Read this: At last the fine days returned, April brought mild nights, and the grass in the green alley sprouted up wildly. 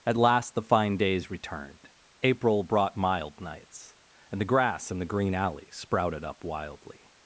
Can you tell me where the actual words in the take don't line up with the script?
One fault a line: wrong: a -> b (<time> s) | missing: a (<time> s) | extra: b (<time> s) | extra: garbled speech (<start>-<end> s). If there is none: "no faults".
no faults